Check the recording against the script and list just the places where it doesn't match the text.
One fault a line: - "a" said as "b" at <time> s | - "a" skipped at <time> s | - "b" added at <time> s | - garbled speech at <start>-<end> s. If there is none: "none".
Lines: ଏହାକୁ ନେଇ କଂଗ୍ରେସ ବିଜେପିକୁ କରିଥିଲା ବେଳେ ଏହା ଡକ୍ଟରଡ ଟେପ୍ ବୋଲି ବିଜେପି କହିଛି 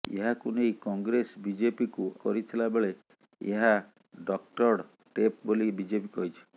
none